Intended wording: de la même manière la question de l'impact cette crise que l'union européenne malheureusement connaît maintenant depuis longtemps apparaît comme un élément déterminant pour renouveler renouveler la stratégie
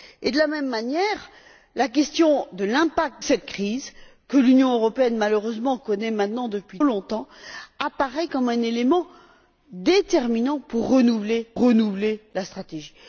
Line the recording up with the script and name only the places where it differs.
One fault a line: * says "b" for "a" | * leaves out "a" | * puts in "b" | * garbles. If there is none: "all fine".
all fine